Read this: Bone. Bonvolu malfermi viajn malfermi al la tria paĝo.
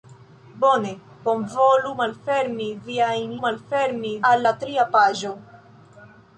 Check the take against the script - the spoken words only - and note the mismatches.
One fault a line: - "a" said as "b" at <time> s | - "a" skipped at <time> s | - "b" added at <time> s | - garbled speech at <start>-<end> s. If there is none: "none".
none